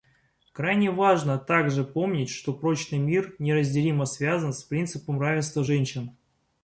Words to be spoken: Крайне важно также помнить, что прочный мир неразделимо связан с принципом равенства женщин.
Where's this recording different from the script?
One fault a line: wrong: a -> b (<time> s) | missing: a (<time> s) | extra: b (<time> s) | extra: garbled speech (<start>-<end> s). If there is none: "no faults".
no faults